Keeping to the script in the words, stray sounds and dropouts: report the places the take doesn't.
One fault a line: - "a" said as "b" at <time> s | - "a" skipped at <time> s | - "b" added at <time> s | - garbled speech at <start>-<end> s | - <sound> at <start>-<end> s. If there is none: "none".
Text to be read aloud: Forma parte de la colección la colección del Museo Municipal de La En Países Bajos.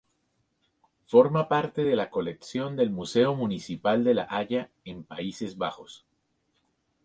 - "la colección" skipped at 2.8 s
- "Haya" added at 4.3 s